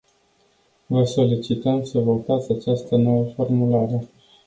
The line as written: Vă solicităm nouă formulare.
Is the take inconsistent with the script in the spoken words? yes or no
yes